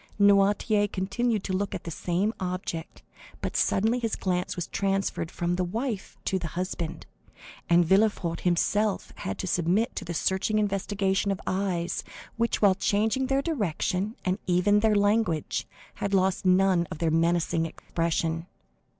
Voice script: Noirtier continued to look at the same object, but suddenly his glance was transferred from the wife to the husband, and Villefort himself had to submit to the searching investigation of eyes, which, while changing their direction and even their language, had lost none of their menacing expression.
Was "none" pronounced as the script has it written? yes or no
yes